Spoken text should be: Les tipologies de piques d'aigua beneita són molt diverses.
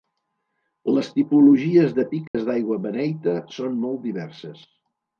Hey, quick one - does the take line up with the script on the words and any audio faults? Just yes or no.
no